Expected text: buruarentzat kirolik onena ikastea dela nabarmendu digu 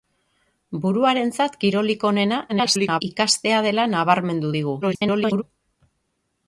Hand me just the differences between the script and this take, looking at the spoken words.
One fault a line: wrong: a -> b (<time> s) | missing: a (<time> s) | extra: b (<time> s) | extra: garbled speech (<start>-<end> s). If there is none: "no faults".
extra: garbled speech (2.5-3.0 s)
extra: garbled speech (4.8-5.4 s)